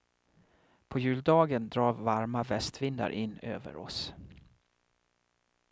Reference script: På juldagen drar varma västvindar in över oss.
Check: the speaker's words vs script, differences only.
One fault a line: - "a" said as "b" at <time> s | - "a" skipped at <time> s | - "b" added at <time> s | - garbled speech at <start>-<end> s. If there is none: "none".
none